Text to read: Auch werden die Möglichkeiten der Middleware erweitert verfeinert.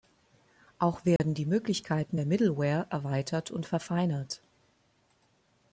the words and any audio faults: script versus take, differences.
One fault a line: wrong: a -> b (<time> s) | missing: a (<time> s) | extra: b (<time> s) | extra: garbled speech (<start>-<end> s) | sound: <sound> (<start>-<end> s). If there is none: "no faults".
sound: dropout (1.2-1.2 s)
extra: und (3.5 s)